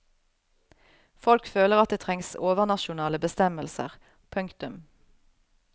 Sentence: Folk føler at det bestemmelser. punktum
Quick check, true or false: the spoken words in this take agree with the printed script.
false